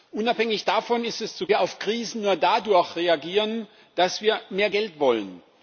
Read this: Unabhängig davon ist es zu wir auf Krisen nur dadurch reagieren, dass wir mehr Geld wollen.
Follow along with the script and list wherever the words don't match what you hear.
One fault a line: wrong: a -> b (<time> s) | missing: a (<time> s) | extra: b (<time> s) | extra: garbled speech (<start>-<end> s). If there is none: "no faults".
no faults